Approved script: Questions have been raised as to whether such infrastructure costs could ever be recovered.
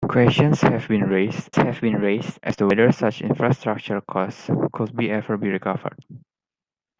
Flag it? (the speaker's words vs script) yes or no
yes